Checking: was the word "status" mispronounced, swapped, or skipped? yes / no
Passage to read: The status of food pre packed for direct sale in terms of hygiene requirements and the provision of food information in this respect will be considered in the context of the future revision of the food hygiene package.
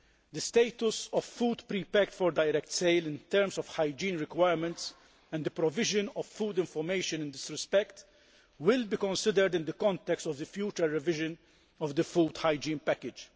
no